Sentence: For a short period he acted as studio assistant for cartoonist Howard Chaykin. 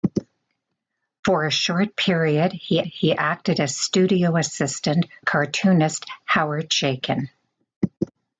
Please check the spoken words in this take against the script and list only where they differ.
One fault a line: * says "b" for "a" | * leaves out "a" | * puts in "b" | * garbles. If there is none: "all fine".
* puts in "he"
* leaves out "for"